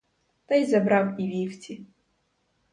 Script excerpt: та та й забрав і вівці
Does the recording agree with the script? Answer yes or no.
no